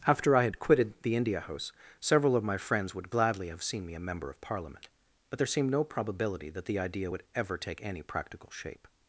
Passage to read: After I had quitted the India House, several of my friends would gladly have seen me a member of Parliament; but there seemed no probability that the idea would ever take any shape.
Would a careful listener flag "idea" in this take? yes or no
no